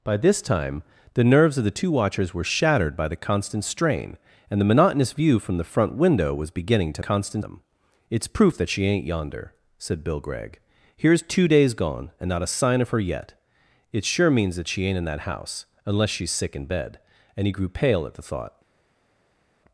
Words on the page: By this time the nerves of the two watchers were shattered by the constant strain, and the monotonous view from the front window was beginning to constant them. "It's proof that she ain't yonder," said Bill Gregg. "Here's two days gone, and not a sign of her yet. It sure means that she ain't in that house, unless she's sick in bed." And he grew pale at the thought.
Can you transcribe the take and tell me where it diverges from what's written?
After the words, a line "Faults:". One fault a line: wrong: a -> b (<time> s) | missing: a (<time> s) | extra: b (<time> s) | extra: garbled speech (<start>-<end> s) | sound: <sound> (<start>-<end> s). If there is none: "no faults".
By this time the nerves of the two watchers were shattered by the constant strain, and the monotonous view from the front window was beginning to constant them. "It's proof that she ain't yonder," said Bill Gregg. "Here's two days gone, and not a sign of her yet. It sure means that she ain't in that house, unless she's sick in bed." And he grew pale at the thought.
Faults:
no faults